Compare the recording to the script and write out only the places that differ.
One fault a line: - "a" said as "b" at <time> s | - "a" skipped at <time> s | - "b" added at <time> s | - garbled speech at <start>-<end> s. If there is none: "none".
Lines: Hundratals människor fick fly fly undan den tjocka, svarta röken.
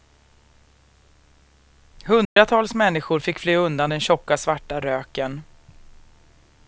- "fly" skipped at 3.6 s